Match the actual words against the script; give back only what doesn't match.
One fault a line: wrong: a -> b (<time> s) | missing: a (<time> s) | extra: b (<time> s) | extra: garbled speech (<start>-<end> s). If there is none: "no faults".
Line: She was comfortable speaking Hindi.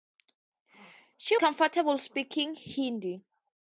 missing: was (1.4 s)